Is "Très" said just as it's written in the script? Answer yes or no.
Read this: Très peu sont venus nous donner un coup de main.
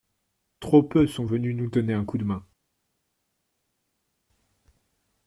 no